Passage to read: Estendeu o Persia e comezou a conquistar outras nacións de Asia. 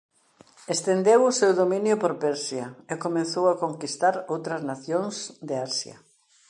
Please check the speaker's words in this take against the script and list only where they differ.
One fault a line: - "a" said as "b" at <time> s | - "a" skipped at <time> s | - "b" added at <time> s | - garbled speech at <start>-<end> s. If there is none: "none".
- "seu dominio por" added at 1.4 s